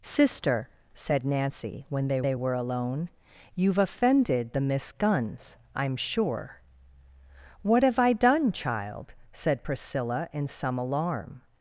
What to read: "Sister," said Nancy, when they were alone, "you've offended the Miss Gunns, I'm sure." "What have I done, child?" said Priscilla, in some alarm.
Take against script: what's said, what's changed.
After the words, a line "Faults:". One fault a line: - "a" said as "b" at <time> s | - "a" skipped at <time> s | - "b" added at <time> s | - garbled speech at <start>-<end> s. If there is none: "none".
"Sister," said Nancy, when they they were alone, "you've offended the Miss Gunns, I'm sure." "What have I done, child?" said Priscilla, in some alarm.
Faults:
- "they" added at 2.2 s